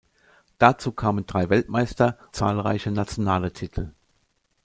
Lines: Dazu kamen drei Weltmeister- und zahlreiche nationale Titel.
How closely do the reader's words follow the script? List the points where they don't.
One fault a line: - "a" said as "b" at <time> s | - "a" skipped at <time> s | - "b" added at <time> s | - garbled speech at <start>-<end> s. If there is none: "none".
- "und" skipped at 2.1 s